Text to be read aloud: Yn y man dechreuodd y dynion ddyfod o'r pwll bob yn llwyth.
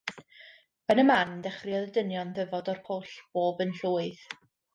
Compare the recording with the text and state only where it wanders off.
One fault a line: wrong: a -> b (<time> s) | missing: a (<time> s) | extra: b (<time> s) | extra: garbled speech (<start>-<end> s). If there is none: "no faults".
no faults